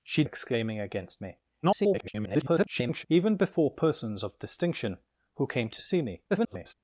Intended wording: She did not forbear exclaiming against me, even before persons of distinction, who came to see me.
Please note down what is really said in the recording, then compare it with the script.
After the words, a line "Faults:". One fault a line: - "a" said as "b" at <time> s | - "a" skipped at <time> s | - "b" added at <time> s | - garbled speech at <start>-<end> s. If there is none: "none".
She exclaiming against me, [garbled] even before persons of distinction, who came to see me. [garbled]
Faults:
- "did not forbear" skipped at 0.2 s
- garbled speech at 1.6-3.1 s
- garbled speech at 6.3-6.7 s